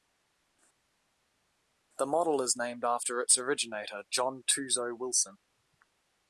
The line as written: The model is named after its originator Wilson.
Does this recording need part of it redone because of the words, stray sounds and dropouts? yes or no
yes